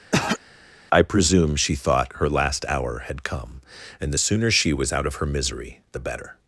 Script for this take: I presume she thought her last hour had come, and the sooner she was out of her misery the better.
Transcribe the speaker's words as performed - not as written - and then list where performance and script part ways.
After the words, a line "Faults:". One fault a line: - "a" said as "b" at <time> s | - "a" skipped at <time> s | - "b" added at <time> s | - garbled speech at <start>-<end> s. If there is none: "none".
I presume she thought her last hour had come, and the sooner she was out of her misery the better.
Faults:
none